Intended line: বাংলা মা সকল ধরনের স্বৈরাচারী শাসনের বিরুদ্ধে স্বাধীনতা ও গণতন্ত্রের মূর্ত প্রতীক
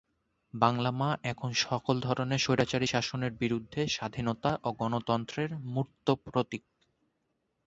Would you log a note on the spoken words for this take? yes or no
yes